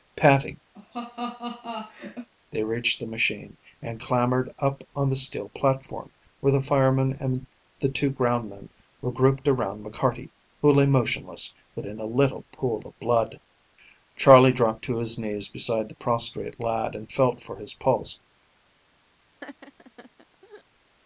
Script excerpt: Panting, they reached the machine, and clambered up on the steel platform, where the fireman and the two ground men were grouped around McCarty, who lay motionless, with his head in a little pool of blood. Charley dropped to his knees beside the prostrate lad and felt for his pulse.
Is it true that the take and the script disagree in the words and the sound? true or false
true